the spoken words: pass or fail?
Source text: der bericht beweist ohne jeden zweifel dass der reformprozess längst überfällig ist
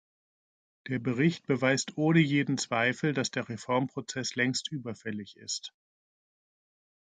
pass